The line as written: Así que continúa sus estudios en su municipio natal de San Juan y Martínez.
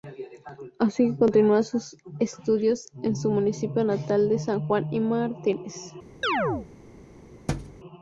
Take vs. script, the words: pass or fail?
pass